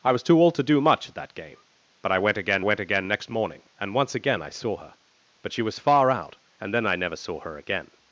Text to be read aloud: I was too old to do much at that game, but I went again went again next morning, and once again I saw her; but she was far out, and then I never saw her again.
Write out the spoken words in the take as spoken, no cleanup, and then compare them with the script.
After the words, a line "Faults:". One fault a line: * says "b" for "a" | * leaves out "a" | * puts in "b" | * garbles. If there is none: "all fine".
I was too old to do much at that game, but I went again went again next morning, and once again I saw her; but she was far out, and then I never saw her again.
Faults:
all fine